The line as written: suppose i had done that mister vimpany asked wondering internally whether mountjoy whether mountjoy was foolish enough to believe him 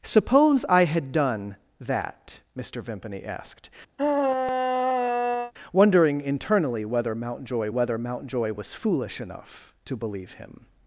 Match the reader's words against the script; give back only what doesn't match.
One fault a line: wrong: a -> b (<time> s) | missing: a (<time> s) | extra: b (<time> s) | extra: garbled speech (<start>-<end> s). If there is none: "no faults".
no faults